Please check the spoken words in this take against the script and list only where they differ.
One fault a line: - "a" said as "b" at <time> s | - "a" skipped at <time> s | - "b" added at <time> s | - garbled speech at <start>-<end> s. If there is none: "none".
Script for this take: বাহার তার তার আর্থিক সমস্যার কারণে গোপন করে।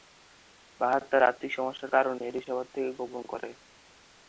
- "তার" skipped at 1.2 s
- "এটি সবার থেকে" added at 2.3 s